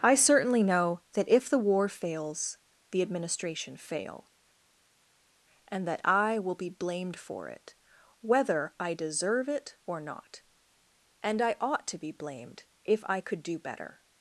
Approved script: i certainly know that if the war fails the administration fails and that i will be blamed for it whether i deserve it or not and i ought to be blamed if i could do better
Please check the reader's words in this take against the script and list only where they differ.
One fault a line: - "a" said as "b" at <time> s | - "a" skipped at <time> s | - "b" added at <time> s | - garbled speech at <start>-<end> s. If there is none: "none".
- "fails" said as "fail" at 3.8 s